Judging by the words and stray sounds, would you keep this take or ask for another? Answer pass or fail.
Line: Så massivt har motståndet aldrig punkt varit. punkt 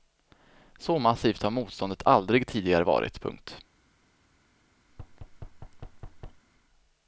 fail